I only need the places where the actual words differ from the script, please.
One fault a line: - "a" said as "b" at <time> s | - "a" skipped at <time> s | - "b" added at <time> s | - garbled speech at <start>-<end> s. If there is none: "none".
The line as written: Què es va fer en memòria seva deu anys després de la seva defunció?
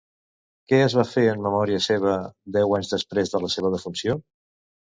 none